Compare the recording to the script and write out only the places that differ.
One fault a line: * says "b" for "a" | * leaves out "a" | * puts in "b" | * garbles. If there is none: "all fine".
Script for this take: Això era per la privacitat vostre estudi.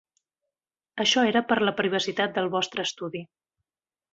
* puts in "del"